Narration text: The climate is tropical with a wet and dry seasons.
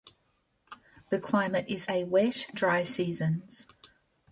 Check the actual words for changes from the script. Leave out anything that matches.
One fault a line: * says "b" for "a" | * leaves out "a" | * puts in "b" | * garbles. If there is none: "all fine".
* leaves out "tropical with"
* leaves out "and"